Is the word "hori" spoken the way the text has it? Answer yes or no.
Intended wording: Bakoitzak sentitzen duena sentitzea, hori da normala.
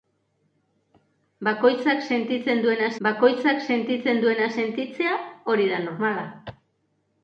yes